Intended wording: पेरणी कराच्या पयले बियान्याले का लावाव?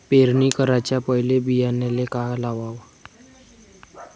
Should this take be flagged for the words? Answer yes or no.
no